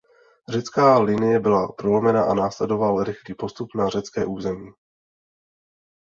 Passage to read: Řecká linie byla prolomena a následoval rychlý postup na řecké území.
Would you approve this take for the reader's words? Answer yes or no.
yes